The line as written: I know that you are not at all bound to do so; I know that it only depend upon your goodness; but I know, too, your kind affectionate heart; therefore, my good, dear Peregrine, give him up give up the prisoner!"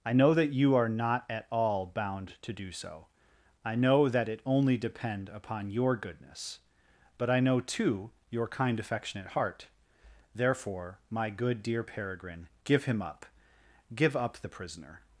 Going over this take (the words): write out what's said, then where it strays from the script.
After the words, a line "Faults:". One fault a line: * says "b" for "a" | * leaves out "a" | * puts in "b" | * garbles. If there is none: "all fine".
I know that you are not at all bound to do so; I know that it only depend upon your goodness; but I know, too, your kind affectionate heart; therefore, my good, dear Peregrine, give him up give up the prisoner!"
Faults:
all fine